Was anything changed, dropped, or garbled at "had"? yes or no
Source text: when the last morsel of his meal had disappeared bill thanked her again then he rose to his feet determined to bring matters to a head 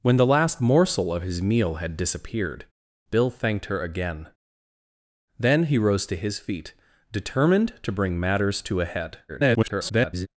no